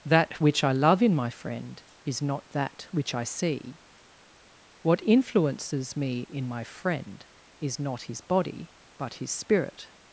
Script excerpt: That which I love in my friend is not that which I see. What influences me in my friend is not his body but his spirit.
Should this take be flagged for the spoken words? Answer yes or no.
no